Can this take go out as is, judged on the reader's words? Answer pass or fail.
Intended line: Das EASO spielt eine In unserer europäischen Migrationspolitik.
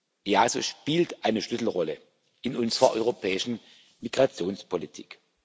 fail